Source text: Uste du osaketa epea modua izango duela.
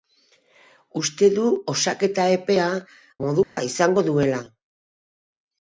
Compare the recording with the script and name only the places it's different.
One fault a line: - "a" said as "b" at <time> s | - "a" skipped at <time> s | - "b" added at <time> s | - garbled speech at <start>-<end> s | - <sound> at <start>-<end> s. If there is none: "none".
- dropout at 3.4-3.6 s